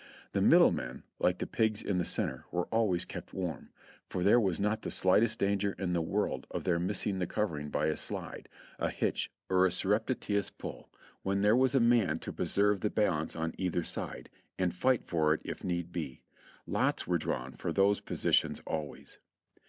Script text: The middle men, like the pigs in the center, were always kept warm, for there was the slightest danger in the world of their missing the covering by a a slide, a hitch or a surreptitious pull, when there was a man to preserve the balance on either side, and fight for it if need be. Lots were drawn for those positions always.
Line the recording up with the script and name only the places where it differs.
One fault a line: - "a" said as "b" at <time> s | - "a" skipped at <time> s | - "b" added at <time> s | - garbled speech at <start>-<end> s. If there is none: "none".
- "not" added at 4.6 s
- "a" skipped at 8.0 s